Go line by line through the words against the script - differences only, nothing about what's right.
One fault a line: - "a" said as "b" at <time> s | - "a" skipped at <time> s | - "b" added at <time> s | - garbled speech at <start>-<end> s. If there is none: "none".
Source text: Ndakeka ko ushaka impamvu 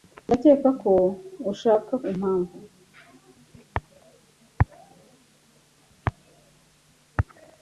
none